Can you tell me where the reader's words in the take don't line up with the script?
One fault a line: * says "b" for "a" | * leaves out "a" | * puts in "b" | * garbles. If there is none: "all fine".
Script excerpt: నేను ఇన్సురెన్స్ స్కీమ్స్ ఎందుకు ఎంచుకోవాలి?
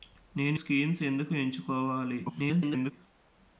* leaves out "ఇన్సురెన్స్"
* garbles